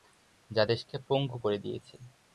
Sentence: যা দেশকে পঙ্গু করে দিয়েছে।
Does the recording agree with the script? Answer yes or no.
yes